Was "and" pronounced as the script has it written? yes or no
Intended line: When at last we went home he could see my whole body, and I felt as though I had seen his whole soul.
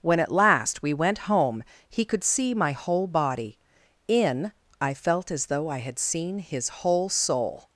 no